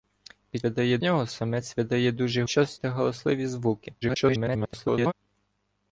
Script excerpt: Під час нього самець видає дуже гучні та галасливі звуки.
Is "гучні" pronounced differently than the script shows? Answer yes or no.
yes